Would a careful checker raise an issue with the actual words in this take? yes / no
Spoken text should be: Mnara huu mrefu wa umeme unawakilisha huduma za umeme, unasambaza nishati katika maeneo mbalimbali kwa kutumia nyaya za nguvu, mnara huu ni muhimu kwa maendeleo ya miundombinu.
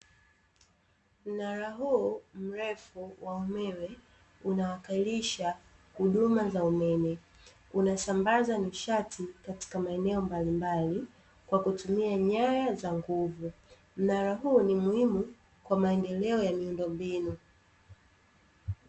no